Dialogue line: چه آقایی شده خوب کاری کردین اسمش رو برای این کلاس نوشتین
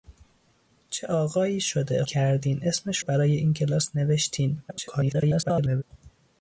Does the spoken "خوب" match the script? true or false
false